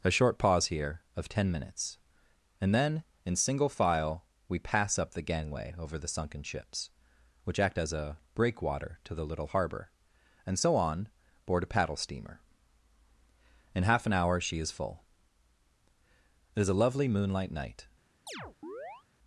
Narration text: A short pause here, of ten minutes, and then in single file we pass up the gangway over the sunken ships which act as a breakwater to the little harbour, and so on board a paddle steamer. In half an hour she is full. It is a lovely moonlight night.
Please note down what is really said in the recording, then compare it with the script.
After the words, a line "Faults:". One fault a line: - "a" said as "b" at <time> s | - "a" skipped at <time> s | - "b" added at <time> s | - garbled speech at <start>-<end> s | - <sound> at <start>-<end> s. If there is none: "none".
A short pause here, of ten minutes, and then in single file we pass up the gangway over the sunken ships which act as a breakwater to the little harbour, and so on board a paddle steamer. In half an hour she is full. It is a lovely moonlight night.
Faults:
- chirp at 18.3-19.0 s